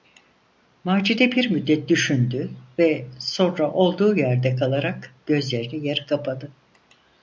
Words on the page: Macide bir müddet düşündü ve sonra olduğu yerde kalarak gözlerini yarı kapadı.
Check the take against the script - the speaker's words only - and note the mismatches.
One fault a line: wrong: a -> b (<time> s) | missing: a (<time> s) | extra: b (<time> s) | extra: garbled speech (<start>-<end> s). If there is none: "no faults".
no faults